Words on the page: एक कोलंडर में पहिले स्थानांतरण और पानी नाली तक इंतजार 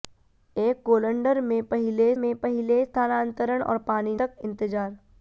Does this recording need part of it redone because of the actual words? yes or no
yes